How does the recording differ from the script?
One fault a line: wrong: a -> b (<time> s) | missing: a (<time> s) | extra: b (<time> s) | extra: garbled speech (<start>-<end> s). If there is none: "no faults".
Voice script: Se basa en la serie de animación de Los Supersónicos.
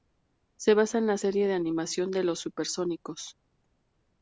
no faults